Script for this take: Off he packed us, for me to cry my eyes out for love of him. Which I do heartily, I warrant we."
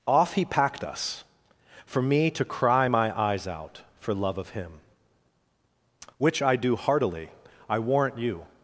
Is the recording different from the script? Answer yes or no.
yes